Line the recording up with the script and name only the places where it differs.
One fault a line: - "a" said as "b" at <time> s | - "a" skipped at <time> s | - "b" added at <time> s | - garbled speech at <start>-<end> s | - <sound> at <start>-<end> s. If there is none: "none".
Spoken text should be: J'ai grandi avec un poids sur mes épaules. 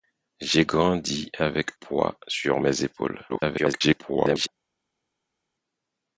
- "un" skipped at 1.8 s
- garbled speech at 3.3-4.5 s